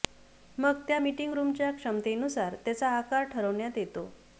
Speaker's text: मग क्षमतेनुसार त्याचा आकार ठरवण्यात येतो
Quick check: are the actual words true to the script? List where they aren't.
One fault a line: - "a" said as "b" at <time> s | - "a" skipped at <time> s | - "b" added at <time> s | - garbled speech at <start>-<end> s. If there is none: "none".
- "त्या मीटिंग रूमच्या" added at 0.9 s